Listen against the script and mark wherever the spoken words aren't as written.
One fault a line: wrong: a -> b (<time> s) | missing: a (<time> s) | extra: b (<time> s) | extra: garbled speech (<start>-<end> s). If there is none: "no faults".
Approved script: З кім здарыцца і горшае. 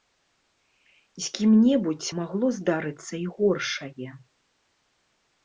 extra: небудзь магло (1.6 s)